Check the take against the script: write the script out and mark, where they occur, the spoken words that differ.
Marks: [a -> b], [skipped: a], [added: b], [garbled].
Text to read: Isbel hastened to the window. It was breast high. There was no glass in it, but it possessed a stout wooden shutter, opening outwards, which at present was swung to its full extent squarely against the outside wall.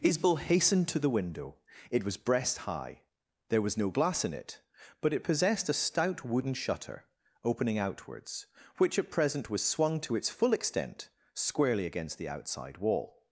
Isbel hastened to the window. It was breast high. There was no glass in it, but it possessed a stout wooden shutter, opening outwards, which at present was swung to its full extent squarely against the outside wall.